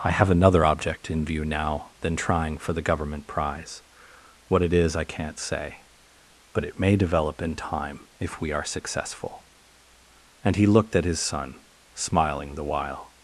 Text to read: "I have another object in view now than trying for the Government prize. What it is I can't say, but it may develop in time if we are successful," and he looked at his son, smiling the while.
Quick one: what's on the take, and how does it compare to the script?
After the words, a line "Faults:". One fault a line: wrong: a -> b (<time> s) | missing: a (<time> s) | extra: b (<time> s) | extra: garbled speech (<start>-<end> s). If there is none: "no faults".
"I have another object in view now than trying for the Government prize. What it is I can't say, but it may develop in time if we are successful," and he looked at his son, smiling the while.
Faults:
no faults